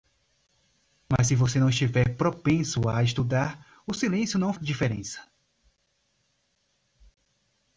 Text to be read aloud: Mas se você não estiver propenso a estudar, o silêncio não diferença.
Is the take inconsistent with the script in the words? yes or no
no